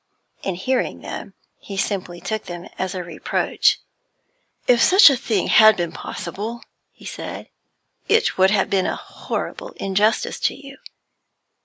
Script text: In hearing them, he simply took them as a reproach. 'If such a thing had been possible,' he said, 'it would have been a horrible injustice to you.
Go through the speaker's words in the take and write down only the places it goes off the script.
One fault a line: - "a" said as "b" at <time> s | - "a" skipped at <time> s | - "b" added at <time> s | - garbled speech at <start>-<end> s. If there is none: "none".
none